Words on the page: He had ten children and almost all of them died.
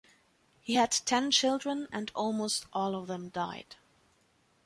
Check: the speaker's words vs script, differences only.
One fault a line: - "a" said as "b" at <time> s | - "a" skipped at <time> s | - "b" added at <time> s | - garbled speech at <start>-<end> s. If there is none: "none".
none